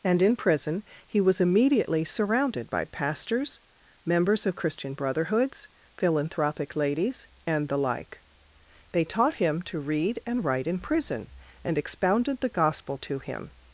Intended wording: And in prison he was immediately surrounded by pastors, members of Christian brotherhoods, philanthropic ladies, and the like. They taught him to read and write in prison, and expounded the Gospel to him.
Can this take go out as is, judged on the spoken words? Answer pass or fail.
pass